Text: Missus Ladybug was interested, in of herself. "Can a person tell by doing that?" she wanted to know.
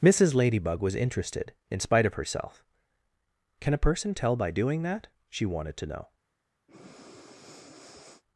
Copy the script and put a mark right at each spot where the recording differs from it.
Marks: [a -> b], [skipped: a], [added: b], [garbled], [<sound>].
Missus Ladybug was interested, in [added: spite] of herself. "Can a person tell by doing that?" she wanted to know. [breath]